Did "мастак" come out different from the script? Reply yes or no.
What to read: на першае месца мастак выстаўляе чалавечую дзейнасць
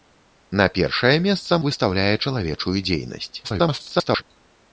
yes